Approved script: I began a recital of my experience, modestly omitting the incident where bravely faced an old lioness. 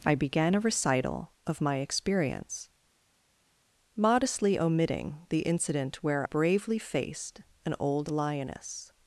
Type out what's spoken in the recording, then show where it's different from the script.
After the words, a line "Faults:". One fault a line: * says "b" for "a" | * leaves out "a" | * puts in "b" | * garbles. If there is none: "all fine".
I began a recital of my experience, modestly omitting the incident where bravely faced an old lioness.
Faults:
all fine